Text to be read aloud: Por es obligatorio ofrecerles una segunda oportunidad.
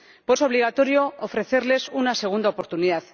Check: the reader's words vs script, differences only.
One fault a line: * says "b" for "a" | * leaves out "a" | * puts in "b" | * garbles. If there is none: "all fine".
all fine